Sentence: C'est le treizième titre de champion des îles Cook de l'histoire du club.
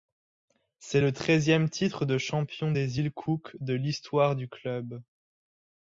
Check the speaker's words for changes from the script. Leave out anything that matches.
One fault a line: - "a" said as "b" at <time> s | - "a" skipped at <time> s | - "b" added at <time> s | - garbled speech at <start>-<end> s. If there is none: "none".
none